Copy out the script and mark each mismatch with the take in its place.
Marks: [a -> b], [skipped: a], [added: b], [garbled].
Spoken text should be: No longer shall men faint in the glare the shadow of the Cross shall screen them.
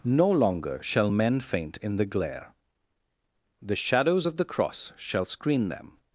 No longer shall men faint in the glare the [shadow -> shadows] of the Cross shall screen them.